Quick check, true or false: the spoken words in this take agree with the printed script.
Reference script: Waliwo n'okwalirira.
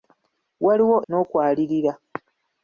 true